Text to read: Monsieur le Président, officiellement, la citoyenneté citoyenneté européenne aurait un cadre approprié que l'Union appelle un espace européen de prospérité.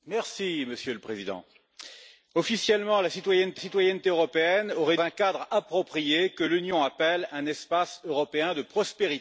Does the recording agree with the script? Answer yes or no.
yes